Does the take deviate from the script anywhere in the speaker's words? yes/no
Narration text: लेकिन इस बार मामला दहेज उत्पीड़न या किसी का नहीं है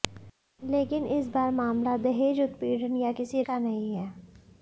no